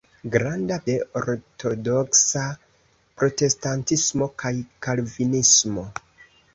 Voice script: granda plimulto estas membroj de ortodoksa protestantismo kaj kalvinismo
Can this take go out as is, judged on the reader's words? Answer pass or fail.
fail